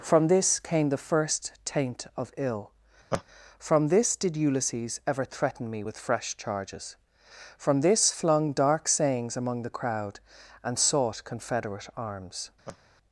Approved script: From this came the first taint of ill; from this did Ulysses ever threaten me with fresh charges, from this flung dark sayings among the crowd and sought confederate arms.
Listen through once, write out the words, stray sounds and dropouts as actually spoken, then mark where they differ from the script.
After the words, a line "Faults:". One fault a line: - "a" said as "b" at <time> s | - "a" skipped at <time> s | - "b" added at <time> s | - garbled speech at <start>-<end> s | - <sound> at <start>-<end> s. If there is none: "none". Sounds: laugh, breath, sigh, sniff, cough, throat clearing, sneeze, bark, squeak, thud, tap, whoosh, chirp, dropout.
From this came the first taint of ill; from this did Ulysses ever threaten me with fresh charges, from this flung dark sayings among the crowd and sought confederate arms.
Faults:
- laugh at 3.1-3.2 s
- laugh at 12.7-12.8 s